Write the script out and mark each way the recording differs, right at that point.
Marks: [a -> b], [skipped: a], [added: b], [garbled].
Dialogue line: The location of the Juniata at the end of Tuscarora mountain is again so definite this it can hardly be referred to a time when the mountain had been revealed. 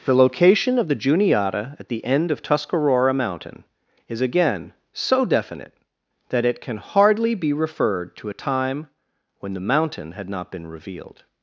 The location of the Juniata at the end of Tuscarora mountain is again so definite [this -> that] it can hardly be referred to a time when the mountain had [added: not] been revealed.